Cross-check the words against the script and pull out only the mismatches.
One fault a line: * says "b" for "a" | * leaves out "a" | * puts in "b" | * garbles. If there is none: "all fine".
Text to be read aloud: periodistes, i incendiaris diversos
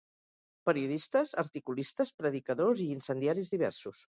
* puts in "articulistes predicadors"